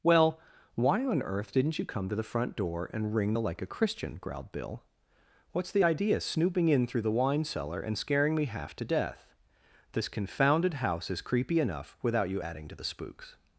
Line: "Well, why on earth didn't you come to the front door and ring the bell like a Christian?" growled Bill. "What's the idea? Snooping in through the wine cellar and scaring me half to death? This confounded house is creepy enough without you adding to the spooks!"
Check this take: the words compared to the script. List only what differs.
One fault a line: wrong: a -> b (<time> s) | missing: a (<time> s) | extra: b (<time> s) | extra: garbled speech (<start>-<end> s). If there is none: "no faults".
missing: bell (3.4 s)